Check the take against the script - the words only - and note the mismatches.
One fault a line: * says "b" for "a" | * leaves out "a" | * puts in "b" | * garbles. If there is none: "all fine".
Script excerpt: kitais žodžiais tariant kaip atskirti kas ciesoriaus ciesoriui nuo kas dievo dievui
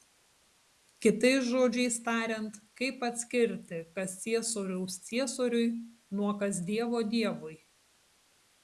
all fine